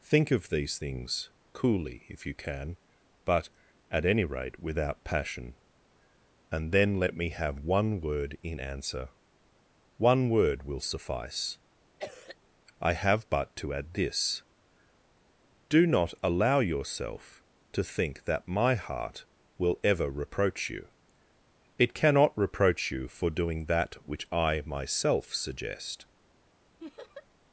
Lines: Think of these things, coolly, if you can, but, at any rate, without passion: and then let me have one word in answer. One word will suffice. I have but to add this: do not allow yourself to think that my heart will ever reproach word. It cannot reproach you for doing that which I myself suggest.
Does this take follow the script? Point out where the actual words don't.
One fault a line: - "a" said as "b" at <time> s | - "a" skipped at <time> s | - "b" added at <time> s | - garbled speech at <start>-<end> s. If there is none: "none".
- "word" said as "you" at 20.7 s